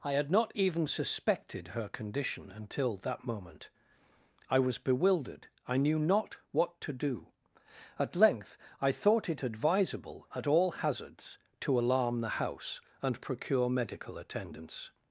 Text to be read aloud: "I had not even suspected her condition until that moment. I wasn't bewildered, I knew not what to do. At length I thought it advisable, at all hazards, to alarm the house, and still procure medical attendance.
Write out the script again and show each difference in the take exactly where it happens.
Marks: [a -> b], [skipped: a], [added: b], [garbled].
"I had not even suspected her condition until that moment. I [wasn't -> was] bewildered, I knew not what to do. At length I thought it advisable, at all hazards, to alarm the house, and [skipped: still] procure medical attendance.